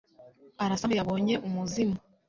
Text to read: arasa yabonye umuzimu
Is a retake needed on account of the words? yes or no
no